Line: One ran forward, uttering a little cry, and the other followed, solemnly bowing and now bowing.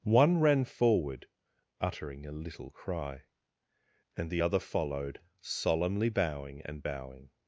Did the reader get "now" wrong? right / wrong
wrong